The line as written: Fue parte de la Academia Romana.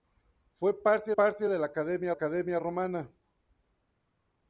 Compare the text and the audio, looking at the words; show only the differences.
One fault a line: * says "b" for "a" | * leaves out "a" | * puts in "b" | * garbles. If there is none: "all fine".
* puts in "parte"
* puts in "Academia"